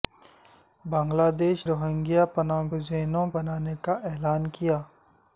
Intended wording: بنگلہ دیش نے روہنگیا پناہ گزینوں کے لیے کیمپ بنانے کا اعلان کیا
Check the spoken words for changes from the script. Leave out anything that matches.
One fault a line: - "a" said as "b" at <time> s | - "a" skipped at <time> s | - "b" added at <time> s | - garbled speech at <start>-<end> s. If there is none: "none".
- "نے" skipped at 1.6 s
- "کے لیے کیمپ" skipped at 3.3 s